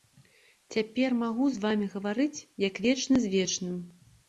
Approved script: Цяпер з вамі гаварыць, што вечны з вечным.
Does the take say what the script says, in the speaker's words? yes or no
no